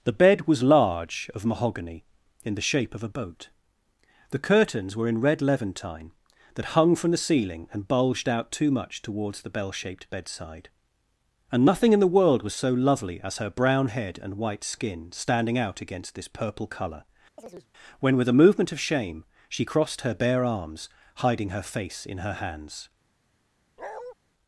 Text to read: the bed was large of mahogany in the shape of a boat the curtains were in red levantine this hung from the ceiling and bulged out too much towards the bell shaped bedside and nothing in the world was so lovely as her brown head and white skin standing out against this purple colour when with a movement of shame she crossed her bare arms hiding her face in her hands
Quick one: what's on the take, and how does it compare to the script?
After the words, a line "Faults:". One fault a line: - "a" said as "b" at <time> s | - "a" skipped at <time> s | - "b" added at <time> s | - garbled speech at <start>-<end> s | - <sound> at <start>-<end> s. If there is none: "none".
the bed was large of mahogany in the shape of a boat the curtains were in red levantine that hung from the ceiling and bulged out too much towards the bell shaped bedside and nothing in the world was so lovely as her brown head and white skin standing out against this purple colour when with a movement of shame she crossed her bare arms hiding her face in her hands
Faults:
- "this" said as "that" at 6.5 s
- chirp at 17.4-17.7 s
- bark at 23.8-24.1 s